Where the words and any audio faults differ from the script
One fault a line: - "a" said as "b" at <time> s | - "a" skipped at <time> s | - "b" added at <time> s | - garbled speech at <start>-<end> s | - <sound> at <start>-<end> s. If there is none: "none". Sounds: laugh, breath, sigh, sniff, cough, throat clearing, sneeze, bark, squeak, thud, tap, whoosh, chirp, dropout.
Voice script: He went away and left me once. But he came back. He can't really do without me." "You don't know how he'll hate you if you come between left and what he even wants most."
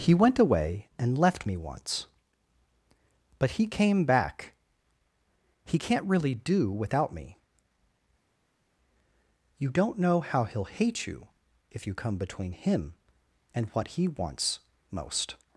- "left" said as "him" at 12.5 s
- "even" skipped at 14.1 s